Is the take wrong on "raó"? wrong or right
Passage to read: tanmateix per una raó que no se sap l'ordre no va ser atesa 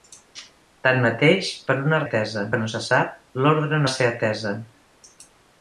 wrong